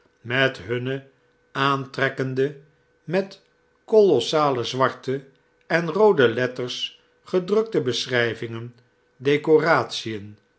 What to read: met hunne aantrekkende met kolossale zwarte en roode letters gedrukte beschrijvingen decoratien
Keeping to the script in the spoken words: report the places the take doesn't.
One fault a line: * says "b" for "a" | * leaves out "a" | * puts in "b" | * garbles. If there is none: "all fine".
all fine